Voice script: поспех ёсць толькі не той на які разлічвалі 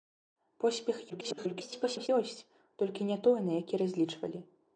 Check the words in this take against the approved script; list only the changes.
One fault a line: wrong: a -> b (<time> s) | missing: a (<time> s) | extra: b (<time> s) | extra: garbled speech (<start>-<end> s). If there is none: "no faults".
extra: garbled speech (1.1-2.1 s)